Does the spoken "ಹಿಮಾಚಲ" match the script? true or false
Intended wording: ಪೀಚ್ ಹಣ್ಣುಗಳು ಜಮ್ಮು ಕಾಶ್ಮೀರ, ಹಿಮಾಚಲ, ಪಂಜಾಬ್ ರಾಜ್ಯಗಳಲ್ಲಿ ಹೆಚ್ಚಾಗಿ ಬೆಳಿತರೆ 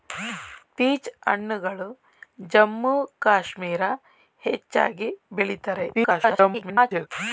false